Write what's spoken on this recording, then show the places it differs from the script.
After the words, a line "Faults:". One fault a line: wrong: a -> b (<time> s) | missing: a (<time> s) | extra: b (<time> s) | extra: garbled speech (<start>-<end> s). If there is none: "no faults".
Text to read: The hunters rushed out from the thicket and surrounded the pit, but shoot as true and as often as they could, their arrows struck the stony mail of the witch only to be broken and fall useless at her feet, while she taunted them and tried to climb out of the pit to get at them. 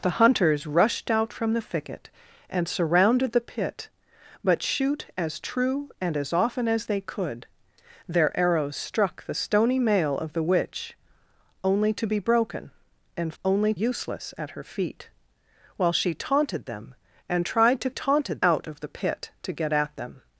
The hunters rushed out from the thicket and surrounded the pit, but shoot as true and as often as they could, their arrows struck the stony mail of the witch only to be broken and only useless at her feet, while she taunted them and tried to taunted out of the pit to get at them.
Faults:
wrong: fall -> only (13.4 s)
wrong: climb -> taunted (17.9 s)